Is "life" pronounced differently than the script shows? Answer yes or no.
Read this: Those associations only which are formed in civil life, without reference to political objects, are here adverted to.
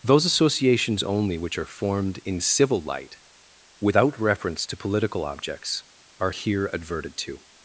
yes